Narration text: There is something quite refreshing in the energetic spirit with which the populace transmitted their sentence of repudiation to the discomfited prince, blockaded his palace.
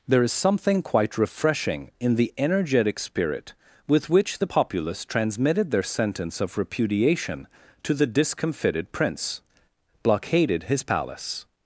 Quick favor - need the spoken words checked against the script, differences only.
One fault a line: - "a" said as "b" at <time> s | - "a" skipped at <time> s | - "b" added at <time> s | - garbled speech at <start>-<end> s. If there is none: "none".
none